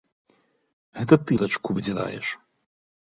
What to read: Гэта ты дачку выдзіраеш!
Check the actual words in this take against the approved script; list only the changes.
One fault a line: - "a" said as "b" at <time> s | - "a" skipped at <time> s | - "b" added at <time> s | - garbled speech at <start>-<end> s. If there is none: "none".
none